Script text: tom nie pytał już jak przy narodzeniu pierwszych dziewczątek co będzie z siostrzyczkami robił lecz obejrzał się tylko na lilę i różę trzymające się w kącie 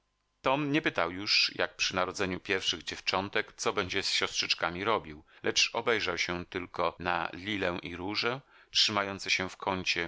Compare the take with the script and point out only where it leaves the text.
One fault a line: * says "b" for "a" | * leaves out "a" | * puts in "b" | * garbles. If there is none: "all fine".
all fine